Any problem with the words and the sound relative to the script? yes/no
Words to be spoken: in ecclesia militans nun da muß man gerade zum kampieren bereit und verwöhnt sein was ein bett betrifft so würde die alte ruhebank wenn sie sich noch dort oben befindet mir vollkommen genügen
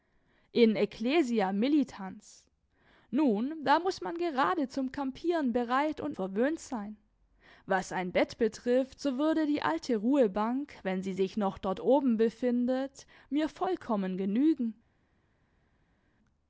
no